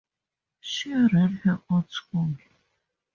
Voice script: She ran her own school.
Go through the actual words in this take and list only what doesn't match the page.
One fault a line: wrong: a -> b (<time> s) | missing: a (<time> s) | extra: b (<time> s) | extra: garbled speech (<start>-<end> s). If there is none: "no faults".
no faults